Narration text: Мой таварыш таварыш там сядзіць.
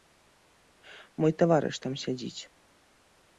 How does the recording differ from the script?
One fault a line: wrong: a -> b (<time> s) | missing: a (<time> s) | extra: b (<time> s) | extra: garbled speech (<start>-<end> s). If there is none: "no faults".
missing: таварыш (1.8 s)